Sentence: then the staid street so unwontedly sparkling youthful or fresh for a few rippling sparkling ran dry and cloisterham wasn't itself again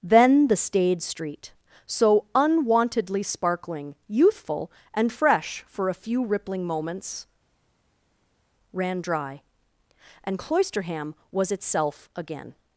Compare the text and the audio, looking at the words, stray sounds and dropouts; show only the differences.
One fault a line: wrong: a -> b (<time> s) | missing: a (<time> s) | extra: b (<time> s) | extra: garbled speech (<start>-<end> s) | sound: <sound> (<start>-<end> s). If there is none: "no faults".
wrong: or -> and (5.0 s)
wrong: sparkling -> moments (6.6 s)
wrong: wasn't -> was (11.3 s)